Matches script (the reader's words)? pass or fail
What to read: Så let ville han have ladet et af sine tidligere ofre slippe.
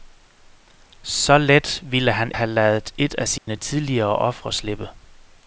pass